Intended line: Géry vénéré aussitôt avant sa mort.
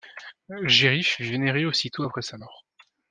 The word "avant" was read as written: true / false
false